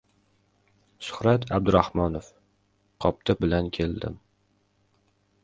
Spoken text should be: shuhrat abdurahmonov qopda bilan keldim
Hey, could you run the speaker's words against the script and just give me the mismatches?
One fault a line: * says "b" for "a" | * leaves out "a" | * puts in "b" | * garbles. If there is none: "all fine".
all fine